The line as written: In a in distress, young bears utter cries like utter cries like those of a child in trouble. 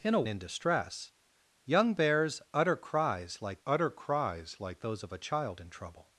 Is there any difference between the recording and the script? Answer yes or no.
no